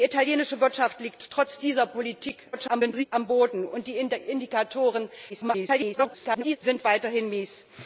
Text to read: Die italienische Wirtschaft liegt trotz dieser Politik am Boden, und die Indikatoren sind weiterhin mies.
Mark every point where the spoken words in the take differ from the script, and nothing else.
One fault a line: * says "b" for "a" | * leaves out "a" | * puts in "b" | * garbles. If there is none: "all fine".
* garbles
* garbles